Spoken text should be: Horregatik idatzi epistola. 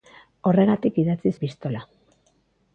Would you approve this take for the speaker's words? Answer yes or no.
yes